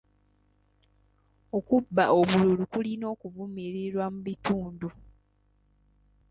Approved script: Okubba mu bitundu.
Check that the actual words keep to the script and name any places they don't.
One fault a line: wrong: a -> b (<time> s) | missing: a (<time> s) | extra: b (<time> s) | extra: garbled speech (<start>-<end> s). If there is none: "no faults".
extra: obululu kulina okuvumirirwa (2.2 s)